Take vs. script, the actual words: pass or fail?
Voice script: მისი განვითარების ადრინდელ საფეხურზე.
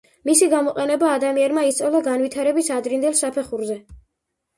fail